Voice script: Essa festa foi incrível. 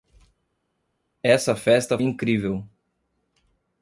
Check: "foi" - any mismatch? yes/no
yes